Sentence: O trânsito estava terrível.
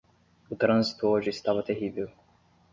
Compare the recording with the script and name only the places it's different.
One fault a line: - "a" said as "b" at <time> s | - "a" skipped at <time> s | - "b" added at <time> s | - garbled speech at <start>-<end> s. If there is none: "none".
- "hoje" added at 1.1 s